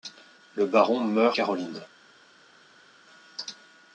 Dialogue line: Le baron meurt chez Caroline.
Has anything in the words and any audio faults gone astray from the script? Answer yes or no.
yes